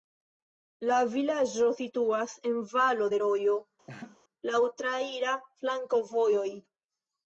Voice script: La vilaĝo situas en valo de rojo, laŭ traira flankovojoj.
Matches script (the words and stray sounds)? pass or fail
fail